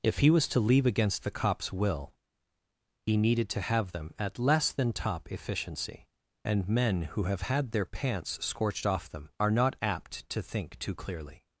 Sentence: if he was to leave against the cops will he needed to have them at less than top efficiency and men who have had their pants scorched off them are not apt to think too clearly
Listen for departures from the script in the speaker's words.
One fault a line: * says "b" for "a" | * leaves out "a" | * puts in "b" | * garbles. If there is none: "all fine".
all fine